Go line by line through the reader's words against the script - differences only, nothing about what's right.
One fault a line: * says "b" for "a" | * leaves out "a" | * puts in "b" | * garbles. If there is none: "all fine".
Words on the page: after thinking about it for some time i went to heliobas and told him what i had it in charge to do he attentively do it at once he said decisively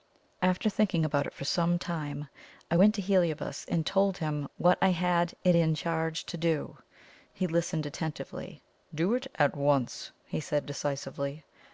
* puts in "listened"